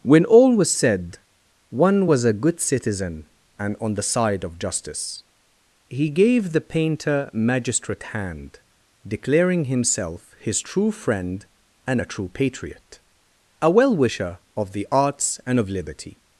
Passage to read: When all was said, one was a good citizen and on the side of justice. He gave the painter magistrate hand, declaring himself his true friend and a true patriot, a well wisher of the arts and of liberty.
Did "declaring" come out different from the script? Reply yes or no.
no